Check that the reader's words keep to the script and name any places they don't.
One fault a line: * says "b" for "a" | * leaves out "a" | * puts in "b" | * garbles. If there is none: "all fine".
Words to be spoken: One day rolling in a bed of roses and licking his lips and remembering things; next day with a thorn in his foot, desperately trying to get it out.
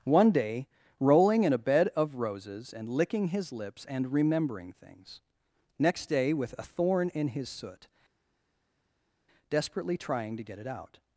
* says "soot" for "foot"